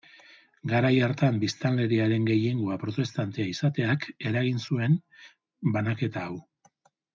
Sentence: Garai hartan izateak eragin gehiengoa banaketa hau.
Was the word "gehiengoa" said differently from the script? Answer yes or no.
yes